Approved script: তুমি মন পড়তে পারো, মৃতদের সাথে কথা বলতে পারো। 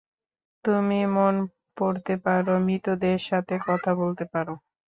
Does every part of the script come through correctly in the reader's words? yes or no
yes